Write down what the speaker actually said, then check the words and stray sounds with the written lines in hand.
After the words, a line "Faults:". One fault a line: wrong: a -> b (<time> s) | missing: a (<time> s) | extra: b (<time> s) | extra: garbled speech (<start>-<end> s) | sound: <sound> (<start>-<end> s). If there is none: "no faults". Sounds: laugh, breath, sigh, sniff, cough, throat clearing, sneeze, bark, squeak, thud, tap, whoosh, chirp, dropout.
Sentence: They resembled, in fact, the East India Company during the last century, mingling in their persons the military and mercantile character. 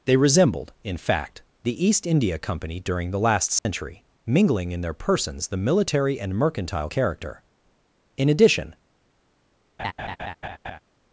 They resembled, in fact, the East India Company during the last century, mingling in their persons the military and mercantile character. In addition
Faults:
sound: dropout (3.6-3.7 s)
extra: In addition (8.2 s)
sound: laugh (9.8-10.8 s)